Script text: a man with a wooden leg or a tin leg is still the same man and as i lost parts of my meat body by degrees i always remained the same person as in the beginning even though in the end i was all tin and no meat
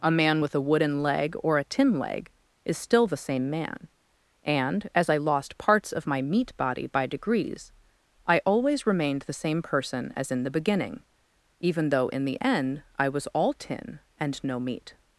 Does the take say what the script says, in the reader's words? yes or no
yes